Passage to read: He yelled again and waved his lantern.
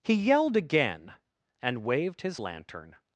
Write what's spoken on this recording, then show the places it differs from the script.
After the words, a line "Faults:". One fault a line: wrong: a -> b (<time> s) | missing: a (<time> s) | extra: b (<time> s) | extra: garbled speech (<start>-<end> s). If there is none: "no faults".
He yelled again and waved his lantern.
Faults:
no faults